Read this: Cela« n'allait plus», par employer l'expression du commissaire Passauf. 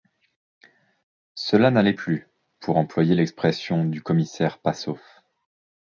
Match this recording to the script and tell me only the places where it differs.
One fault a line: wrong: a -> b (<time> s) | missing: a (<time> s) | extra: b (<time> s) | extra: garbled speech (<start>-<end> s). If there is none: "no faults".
wrong: par -> pour (2.6 s)